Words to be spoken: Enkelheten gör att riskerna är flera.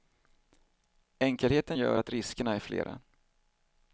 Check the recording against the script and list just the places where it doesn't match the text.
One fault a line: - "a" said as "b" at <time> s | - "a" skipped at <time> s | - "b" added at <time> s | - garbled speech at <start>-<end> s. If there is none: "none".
none